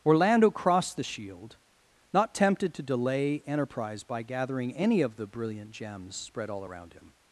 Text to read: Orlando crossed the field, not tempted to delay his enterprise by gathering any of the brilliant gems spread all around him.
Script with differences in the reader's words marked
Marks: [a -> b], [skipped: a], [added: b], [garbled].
Orlando crossed the [field, -> shield] not tempted to delay [skipped: his] enterprise by gathering any of the brilliant gems spread all around him.